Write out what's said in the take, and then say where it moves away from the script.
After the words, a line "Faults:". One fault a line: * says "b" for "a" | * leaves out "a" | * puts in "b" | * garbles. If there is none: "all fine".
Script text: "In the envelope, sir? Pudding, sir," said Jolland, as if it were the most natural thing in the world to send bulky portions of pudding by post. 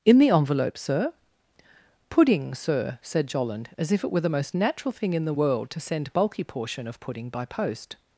"In the envelope, sir? Pudding, sir," said Jolland, as if it were the most natural thing in the world to send bulky portion of pudding by post.
Faults:
* says "portion" for "portions"